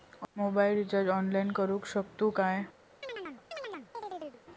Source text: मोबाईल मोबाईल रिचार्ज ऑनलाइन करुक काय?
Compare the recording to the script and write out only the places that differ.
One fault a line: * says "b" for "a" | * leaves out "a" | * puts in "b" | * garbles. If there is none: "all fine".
* leaves out "मोबाईल"
* puts in "शकतू"